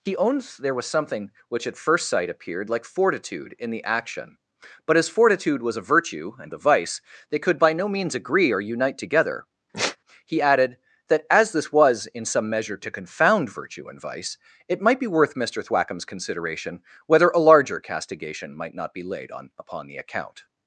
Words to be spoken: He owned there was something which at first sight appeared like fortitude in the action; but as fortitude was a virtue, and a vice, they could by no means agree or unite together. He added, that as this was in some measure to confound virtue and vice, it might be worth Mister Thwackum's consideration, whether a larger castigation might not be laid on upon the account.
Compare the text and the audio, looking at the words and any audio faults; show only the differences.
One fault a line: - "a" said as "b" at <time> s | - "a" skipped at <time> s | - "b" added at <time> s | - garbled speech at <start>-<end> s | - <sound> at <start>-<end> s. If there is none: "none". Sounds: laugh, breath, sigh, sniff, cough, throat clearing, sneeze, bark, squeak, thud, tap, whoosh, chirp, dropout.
- sigh at 9.7-10.0 s